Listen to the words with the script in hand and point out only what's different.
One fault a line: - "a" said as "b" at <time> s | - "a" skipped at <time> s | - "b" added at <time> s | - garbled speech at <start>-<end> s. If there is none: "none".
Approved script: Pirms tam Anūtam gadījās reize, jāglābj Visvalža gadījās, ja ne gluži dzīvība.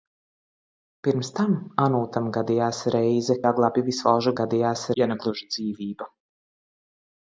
none